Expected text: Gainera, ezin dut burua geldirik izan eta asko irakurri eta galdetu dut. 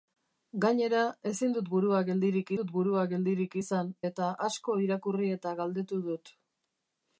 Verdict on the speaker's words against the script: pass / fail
fail